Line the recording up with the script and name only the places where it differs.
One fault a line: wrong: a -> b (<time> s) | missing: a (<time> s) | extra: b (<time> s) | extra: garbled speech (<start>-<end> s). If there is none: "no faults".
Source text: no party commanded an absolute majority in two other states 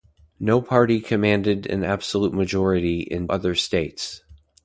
missing: two (3.3 s)